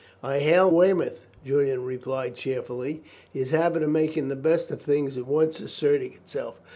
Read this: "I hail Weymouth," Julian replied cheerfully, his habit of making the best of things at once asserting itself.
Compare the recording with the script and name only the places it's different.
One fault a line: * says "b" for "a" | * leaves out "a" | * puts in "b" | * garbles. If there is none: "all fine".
all fine